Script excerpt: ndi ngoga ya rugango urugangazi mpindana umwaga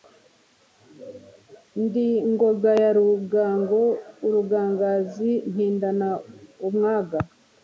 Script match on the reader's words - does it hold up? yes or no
yes